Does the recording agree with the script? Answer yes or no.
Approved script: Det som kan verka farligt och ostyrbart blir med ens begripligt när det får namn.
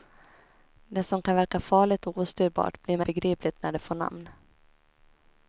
no